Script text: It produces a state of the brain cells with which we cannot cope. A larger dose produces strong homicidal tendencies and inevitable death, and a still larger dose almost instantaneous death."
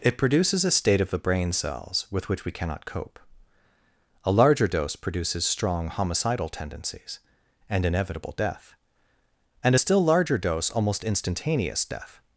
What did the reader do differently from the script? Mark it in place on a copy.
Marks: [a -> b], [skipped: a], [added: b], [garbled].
It produces a state of the brain cells with which we cannot cope. A larger dose produces strong homicidal tendencies and inevitable death, and a still larger dose almost instantaneous death."